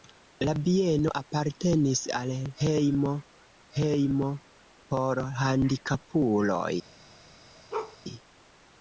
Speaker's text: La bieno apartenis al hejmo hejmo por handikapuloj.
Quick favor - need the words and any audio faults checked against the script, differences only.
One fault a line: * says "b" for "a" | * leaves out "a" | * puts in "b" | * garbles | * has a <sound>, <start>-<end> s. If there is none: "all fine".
* has a bark, 7.7-8.0 s